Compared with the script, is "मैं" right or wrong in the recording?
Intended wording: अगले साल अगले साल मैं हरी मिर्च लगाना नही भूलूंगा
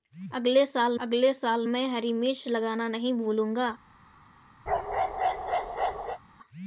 right